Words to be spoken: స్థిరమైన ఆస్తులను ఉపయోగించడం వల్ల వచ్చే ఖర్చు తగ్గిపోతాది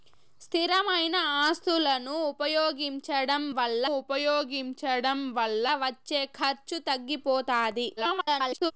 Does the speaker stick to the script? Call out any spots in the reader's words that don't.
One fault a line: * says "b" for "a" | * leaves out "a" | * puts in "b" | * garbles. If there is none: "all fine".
* puts in "ఉపయోగించడం వల్ల"
* garbles